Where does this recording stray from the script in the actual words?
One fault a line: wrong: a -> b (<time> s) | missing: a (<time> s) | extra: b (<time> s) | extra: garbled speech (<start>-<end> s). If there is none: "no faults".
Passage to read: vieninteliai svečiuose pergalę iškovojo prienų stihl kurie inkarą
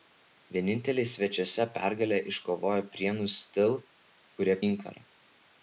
no faults